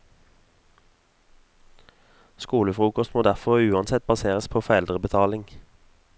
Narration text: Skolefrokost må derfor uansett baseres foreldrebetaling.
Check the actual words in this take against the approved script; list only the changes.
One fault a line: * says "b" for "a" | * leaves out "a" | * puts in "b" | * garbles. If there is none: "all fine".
* puts in "på"